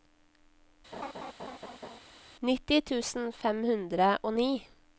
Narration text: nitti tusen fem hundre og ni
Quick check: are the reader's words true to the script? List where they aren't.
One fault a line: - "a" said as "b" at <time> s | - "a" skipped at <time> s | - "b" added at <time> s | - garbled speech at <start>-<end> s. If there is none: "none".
none